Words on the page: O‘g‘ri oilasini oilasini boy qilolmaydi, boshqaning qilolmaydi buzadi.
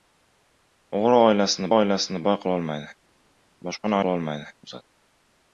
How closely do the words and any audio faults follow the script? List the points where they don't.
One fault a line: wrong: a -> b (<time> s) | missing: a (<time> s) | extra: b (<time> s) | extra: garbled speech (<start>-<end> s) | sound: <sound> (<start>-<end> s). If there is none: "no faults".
no faults